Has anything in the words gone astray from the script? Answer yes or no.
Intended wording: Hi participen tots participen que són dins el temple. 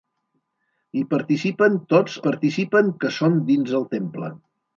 no